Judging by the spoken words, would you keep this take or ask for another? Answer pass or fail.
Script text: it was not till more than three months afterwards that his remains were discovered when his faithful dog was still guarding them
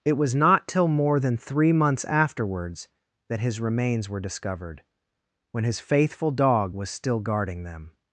pass